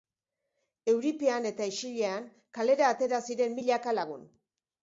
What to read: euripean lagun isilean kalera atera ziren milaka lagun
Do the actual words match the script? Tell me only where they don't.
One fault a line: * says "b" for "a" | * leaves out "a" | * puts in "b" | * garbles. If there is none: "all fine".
* says "eta" for "lagun"